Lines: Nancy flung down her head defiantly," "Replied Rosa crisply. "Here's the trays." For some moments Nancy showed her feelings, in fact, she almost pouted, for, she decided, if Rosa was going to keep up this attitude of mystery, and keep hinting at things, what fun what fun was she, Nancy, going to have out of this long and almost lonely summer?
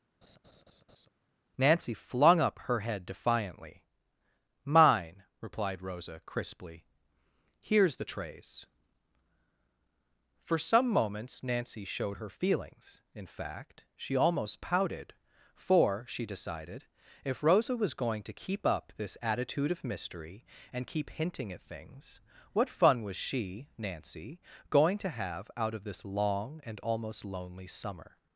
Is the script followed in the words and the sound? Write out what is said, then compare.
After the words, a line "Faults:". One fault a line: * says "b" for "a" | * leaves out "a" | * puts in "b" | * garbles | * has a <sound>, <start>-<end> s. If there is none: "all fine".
Nancy flung up her head defiantly. "Mine," replied Rosa crisply. "Here's the trays." For some moments Nancy showed her feelings, in fact, she almost pouted, for, she decided, if Rosa was going to keep up this attitude of mystery, and keep hinting at things, what fun was she, Nancy, going to have out of this long and almost lonely summer?
Faults:
* has a laugh, 0.2-1.1 s
* says "up" for "down"
* puts in "Mine"
* leaves out "what fun"